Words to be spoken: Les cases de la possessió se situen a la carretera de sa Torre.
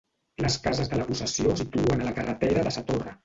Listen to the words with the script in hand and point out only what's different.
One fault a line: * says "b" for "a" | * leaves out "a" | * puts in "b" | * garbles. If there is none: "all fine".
* leaves out "se"